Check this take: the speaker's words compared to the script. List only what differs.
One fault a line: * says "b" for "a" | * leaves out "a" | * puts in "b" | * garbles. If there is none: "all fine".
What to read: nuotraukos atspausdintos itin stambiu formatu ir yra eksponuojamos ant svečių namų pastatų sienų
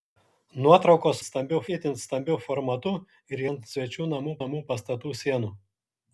* says "stambiu" for "atspausdintos"
* leaves out "yra eksponuojamos"
* puts in "namų"